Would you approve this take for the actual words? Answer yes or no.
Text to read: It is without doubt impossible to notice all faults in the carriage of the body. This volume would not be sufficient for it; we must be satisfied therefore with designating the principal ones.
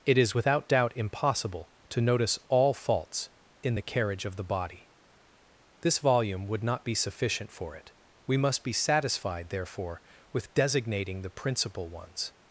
yes